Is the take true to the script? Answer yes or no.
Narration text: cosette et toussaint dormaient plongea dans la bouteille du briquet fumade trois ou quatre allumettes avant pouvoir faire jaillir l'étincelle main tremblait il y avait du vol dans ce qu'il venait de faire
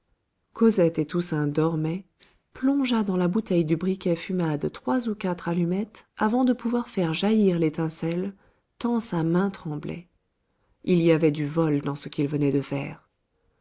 no